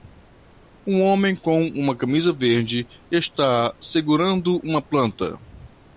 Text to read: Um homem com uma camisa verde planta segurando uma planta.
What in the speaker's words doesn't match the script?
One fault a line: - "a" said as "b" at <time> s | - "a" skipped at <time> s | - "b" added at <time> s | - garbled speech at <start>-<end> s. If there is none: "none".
- "planta" said as "está" at 3.1 s